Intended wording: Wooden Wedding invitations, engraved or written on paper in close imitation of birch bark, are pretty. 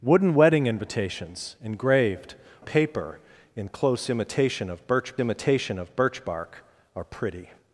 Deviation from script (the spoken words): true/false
true